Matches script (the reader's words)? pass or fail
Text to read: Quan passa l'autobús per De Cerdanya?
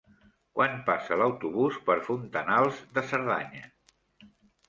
fail